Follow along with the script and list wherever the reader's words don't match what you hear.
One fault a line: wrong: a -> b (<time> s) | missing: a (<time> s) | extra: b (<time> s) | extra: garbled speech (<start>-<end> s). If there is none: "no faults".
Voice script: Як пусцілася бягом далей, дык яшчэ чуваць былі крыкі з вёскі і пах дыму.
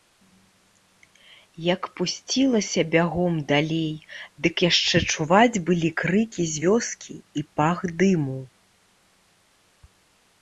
no faults